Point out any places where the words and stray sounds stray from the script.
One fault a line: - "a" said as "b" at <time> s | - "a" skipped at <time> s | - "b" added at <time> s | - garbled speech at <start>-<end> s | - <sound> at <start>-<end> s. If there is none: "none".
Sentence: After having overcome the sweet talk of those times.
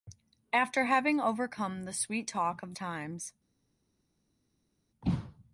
- "those" skipped at 2.8 s